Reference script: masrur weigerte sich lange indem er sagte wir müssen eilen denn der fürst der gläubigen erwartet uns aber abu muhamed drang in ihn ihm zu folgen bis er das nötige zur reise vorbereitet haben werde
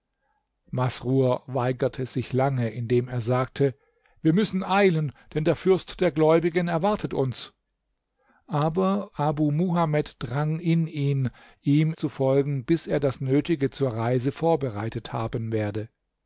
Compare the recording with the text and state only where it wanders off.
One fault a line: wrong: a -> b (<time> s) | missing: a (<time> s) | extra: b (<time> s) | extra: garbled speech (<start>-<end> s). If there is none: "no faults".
no faults